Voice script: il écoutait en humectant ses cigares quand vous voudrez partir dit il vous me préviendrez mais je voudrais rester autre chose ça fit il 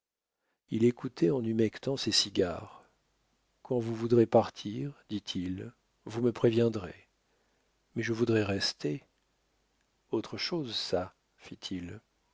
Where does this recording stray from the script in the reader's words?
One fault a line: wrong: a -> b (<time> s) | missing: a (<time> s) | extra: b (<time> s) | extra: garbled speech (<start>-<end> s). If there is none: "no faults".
no faults